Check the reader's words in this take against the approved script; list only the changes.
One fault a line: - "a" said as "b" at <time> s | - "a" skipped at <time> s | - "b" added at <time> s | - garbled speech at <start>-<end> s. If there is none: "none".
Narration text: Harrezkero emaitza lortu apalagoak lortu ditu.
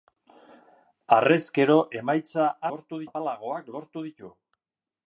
none